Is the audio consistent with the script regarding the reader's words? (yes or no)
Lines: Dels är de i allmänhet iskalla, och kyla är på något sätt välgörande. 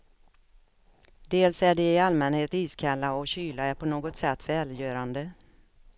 yes